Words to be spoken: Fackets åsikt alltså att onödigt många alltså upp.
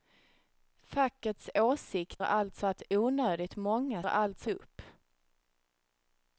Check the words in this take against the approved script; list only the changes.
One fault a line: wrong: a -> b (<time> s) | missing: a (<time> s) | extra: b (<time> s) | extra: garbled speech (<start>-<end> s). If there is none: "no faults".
no faults